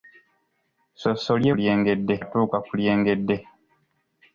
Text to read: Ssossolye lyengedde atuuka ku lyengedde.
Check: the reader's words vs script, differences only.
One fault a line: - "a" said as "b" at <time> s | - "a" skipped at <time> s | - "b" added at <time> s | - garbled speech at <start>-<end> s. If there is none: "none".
none